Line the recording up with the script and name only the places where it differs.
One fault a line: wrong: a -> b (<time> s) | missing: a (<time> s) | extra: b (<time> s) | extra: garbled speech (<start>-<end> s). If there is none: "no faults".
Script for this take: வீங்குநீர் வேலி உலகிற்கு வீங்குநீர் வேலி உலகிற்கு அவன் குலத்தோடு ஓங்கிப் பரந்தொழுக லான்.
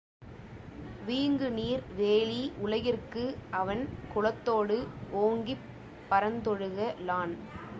missing: வீங்குநீர் வேலி உலகிற்கு (3.2 s)